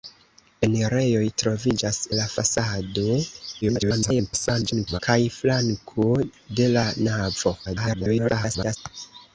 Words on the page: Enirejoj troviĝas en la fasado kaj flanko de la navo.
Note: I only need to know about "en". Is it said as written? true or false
false